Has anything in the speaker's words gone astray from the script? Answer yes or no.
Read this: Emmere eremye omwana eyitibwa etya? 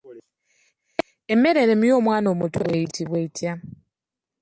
yes